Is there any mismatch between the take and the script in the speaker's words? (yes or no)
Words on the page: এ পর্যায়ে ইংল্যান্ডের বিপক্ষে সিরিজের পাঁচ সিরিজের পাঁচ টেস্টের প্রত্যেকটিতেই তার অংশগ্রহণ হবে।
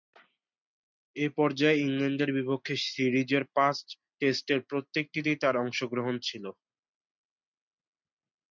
yes